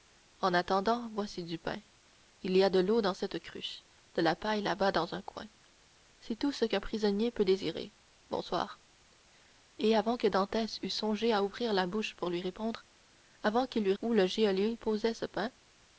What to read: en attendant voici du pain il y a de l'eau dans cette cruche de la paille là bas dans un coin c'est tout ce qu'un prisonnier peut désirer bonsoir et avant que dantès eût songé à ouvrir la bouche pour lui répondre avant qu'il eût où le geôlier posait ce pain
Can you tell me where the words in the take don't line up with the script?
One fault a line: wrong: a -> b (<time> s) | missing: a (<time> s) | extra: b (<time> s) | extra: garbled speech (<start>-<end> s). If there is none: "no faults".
no faults